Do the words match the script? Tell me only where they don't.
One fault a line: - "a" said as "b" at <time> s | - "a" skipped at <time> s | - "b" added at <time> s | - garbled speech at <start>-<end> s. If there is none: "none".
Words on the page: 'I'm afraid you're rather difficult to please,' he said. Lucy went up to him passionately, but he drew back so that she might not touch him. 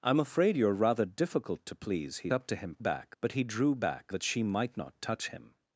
- "said Lucy went" skipped at 2.3 s
- "passionately" said as "back" at 2.8 s
- "so" skipped at 4.1 s